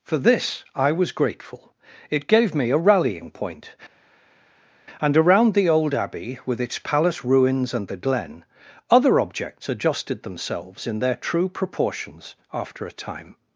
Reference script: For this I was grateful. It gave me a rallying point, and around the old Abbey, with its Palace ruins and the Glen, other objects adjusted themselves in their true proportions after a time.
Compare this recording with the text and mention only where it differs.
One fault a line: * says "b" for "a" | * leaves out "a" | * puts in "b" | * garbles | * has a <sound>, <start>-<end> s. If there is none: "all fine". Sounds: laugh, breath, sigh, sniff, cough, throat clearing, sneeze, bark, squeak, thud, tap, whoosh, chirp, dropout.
all fine